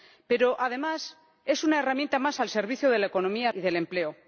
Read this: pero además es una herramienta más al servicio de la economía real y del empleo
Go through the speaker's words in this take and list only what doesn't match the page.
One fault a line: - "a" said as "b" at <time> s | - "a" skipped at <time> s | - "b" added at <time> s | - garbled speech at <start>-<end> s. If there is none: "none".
- "real" skipped at 3.5 s